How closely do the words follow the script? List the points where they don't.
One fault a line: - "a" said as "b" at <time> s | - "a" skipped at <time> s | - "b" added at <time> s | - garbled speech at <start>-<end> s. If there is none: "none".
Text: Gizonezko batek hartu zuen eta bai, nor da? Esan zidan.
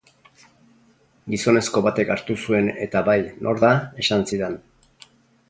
none